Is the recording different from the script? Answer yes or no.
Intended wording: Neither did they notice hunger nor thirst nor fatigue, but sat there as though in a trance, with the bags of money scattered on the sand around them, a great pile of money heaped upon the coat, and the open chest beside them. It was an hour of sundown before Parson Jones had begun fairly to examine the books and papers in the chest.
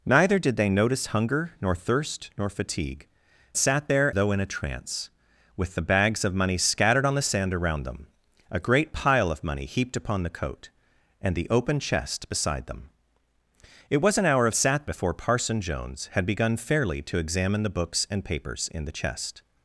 yes